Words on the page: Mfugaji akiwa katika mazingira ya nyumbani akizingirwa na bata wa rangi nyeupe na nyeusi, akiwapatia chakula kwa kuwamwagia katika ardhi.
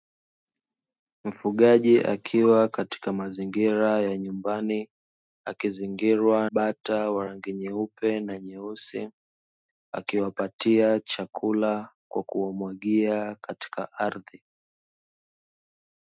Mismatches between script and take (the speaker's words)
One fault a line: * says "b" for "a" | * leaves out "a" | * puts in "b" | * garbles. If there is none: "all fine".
* leaves out "na"